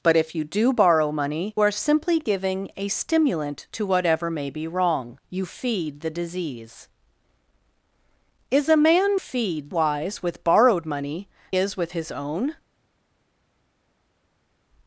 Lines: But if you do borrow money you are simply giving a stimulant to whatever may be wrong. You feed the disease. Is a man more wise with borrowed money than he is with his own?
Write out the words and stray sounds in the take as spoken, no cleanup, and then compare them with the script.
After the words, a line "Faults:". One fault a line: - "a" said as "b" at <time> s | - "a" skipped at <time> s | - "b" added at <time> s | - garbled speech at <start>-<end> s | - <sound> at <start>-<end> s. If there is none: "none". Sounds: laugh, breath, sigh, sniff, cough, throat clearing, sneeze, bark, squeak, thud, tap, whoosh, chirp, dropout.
But if you do borrow money are simply giving a stimulant to whatever may be wrong. You feed the disease. Is a man feed wise with borrowed money is with his own?
Faults:
- "you" skipped at 1.5 s
- "more" said as "feed" at 9.2 s
- "than he" skipped at 11.3 s